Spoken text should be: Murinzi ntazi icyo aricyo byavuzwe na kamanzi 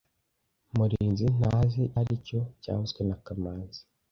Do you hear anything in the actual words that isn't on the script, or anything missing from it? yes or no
yes